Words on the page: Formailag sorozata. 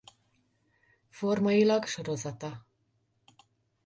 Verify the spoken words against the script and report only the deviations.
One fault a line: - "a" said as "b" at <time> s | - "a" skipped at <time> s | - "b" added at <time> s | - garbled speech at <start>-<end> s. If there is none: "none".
none